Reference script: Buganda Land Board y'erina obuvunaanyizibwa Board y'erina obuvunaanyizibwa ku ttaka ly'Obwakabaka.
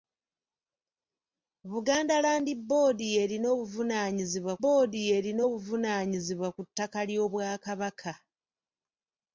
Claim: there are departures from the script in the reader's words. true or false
false